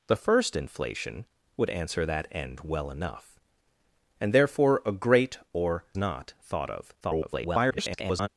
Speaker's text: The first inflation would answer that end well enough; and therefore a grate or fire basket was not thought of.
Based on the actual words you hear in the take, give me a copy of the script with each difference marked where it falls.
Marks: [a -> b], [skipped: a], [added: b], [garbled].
The first inflation would answer that end well enough; and therefore a grate or [skipped: fire basket was] not thought of. [garbled]